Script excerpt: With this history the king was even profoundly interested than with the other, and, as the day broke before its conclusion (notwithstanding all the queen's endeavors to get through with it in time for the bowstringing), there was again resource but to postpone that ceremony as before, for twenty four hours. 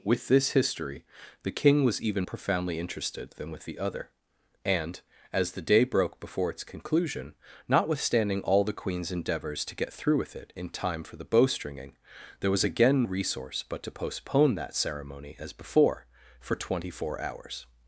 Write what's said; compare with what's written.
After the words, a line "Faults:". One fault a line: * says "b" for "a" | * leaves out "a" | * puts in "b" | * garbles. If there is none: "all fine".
With this history the king was even profoundly interested than with the other, and, as the day broke before its conclusion (notwithstanding all the queen's endeavors to get through with it in time for the bowstringing), there was again resource but to postpone that ceremony as before, for twenty four hours.
Faults:
all fine